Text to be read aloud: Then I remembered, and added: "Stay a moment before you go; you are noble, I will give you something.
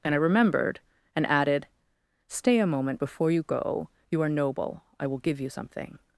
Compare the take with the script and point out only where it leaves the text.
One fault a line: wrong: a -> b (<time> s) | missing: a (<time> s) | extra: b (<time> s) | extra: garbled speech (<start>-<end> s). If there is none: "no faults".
wrong: Then -> And (0.0 s)